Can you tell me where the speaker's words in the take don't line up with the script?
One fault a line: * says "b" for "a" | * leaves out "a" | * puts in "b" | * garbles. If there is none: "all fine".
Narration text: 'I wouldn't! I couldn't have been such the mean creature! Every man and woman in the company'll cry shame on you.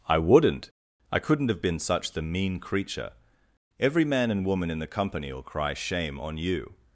all fine